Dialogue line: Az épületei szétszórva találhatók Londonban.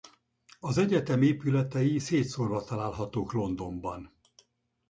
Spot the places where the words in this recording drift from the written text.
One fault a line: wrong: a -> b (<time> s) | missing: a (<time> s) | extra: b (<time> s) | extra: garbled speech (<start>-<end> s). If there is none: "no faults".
extra: egyetem (0.8 s)